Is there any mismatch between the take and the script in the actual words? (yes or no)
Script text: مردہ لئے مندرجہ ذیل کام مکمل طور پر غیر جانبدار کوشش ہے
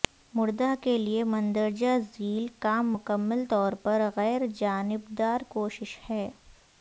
yes